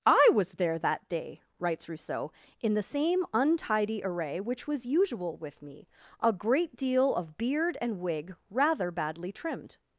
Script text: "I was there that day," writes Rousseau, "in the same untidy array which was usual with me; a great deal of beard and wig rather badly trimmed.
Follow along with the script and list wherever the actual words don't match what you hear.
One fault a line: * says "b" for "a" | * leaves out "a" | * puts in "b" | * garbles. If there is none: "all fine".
all fine